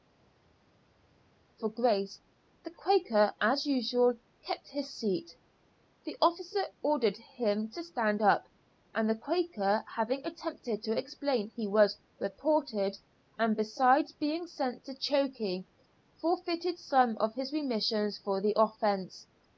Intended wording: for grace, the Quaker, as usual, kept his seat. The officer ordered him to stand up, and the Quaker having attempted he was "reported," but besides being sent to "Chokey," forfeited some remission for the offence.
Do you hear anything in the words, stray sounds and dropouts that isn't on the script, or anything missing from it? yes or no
yes